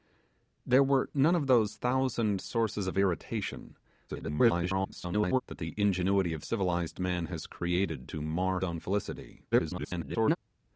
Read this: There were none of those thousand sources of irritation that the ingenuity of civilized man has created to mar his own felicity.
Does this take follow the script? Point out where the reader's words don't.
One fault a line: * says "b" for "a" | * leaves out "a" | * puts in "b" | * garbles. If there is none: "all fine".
* garbles
* leaves out "his"
* garbles